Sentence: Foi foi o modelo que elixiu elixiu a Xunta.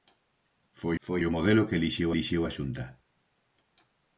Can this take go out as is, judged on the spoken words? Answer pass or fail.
pass